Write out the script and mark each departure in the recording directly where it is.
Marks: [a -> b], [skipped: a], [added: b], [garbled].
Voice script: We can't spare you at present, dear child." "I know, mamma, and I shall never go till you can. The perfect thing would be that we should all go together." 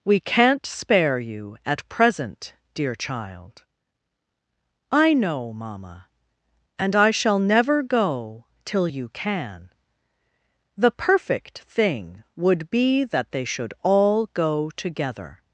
We can't spare you at present, dear child." "I know, mamma, and I shall never go till you can. The perfect thing would be that [we -> they] should all go together."